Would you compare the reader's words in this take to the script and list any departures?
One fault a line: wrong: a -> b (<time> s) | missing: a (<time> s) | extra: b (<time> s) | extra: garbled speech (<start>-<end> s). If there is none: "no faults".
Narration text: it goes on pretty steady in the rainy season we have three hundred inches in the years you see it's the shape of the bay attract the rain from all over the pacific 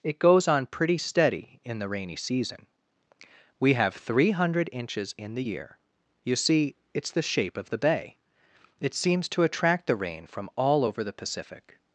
wrong: years -> year (5.4 s)
extra: it seems to (8.8 s)